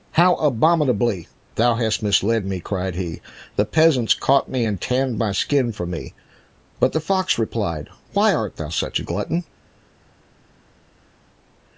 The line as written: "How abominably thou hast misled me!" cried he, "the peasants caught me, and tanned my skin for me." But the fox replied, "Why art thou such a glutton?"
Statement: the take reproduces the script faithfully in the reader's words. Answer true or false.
true